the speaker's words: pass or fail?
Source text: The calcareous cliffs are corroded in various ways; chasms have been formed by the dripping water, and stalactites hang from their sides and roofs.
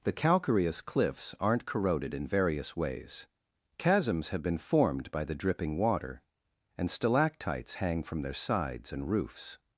fail